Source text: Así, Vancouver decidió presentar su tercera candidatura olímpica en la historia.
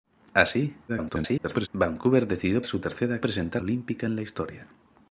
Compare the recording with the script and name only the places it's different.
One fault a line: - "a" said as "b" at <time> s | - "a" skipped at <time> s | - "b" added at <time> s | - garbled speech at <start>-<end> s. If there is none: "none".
- garbled speech at 0.9-1.7 s
- "presentar" skipped at 2.6 s
- "candidatura" said as "presentar" at 3.2 s